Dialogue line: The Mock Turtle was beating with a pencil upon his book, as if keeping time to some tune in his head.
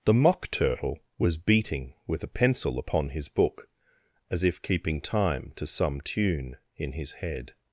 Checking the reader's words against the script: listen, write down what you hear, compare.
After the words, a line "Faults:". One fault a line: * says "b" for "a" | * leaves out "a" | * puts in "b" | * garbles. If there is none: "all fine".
The Mock Turtle was beating with a pencil upon his book, as if keeping time to some tune in his head.
Faults:
all fine